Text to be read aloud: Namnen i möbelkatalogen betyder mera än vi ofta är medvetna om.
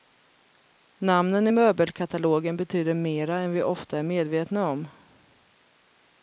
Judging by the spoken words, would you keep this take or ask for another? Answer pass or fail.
pass